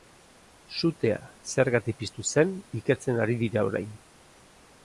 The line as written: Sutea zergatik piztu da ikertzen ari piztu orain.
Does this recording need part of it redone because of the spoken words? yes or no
yes